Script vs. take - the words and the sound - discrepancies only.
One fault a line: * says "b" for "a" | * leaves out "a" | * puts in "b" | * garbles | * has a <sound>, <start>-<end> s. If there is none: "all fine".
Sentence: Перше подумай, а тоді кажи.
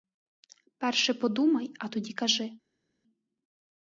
all fine